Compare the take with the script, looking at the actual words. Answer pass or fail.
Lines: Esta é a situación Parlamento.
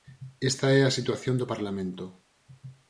fail